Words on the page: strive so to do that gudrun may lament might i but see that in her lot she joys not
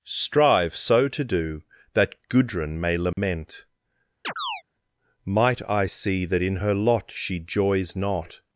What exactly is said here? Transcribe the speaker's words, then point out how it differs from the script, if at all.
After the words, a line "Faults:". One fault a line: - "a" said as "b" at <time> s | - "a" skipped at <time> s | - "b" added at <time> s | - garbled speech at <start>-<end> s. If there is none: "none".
strive so to do that gudrun may lament might i see that in her lot she joys not
Faults:
- "but" skipped at 5.9 s